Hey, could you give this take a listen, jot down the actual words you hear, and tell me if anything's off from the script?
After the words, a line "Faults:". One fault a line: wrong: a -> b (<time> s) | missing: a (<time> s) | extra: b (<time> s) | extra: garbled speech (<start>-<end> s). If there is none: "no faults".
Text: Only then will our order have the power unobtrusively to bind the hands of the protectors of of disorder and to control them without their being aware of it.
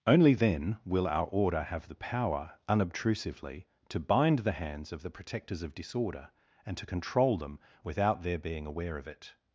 Only then will our order have the power unobtrusively to bind the hands of the protectors of disorder and to control them without their being aware of it.
Faults:
missing: of (5.7 s)